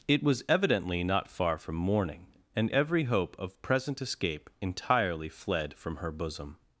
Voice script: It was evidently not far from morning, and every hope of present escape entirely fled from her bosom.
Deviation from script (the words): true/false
false